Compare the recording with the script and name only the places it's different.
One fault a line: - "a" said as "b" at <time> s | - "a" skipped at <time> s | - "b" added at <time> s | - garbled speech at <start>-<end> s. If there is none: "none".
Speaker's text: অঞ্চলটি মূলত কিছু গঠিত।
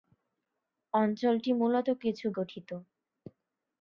none